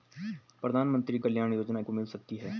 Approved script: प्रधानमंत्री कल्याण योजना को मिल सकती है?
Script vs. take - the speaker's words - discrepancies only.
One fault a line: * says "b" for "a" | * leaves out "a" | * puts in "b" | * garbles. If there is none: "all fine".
all fine